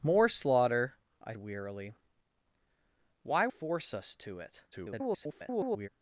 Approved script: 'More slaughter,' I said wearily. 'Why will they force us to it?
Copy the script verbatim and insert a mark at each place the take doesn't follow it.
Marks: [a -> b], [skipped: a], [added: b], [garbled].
'More slaughter,' I [skipped: said] wearily. 'Why [skipped: will they] force us to it? [garbled]